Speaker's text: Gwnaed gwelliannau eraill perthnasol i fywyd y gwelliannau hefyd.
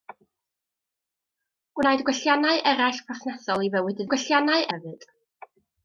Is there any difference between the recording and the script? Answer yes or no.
no